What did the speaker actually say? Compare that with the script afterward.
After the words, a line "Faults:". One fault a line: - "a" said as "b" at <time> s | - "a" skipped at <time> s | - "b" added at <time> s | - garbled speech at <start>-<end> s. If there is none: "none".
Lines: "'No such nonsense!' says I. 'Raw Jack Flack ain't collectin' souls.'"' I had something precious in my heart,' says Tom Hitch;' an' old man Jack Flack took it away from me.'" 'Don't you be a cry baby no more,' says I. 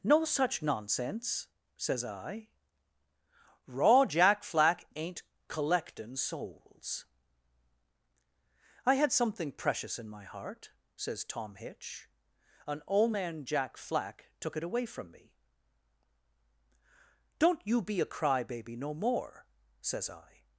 "'No such nonsense!' says I. 'Raw Jack Flack ain't collectin' souls.'"' I had something precious in my heart,' says Tom Hitch;' an' old man Jack Flack took it away from me.'" 'Don't you be a cry baby no more,' says I.
Faults:
none